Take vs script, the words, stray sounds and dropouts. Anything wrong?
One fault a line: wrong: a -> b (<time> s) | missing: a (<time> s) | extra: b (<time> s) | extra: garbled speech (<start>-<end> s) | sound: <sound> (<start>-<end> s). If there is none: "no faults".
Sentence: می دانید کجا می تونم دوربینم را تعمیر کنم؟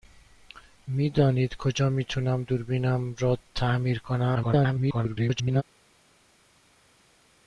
extra: garbled speech (4.3-5.6 s)